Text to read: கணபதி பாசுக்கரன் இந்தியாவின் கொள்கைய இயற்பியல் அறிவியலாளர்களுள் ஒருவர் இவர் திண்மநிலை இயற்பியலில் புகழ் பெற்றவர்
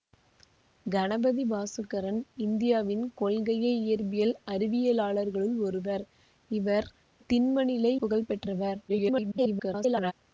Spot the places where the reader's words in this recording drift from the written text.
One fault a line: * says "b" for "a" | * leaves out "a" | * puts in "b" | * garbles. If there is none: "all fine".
* leaves out "இயற்பியலில்"
* garbles